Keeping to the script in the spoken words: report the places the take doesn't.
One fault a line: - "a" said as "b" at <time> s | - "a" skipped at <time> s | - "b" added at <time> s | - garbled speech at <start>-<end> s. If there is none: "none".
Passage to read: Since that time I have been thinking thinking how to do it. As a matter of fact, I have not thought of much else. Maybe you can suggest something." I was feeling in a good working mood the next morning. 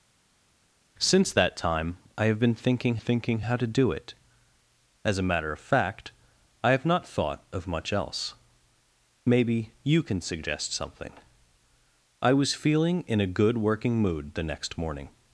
none